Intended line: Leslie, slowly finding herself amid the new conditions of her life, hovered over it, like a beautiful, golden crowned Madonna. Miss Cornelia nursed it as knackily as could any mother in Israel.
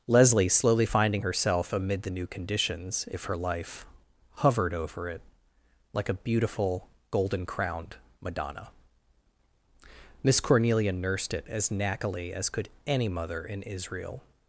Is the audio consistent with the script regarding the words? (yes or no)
no